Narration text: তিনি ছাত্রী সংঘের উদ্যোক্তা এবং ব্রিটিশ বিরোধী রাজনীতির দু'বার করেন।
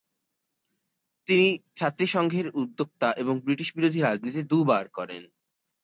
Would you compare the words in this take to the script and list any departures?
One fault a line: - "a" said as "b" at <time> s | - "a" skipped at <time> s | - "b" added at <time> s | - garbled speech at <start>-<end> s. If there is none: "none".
none